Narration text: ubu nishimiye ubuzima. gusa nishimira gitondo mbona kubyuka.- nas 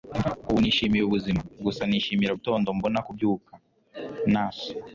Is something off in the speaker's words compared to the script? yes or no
no